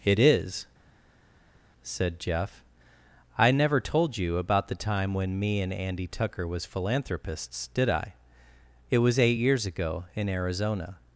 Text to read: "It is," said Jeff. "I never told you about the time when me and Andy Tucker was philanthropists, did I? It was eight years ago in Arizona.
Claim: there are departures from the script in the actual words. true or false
false